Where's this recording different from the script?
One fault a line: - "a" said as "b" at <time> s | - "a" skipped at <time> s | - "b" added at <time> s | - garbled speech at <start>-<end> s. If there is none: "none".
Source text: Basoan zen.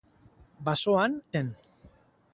none